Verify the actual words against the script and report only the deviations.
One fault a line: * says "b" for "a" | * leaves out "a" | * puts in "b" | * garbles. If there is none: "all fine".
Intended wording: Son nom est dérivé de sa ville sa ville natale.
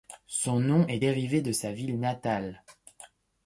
* leaves out "sa ville"